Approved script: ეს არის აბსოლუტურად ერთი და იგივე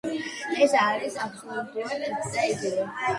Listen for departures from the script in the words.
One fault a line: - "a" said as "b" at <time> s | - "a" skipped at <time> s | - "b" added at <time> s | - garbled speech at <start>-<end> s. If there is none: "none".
none